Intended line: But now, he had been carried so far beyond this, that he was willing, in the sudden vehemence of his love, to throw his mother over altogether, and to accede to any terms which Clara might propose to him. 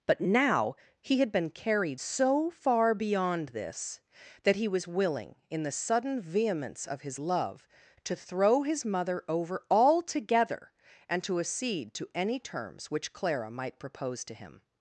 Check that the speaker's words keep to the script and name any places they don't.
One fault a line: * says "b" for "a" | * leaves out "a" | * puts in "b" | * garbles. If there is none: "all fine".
all fine